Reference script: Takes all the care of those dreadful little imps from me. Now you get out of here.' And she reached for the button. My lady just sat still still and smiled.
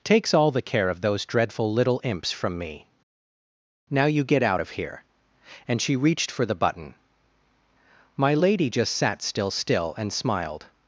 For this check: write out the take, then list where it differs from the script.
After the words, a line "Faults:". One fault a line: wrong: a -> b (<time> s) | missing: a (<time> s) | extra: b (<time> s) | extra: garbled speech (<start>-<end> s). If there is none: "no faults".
Takes all the care of those dreadful little imps from me. Now you get out of here.' And she reached for the button. My lady just sat still still and smiled.
Faults:
no faults